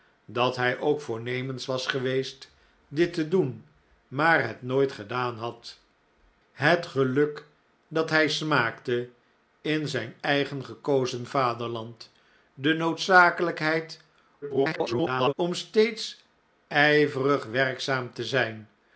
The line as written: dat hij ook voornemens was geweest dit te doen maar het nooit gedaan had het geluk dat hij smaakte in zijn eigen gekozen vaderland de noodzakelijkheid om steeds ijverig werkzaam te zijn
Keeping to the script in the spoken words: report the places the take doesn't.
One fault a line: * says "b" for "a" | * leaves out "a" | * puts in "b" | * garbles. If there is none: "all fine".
* garbles